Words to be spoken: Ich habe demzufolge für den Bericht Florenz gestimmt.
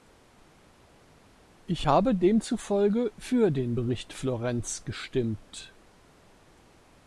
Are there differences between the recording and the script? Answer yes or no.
no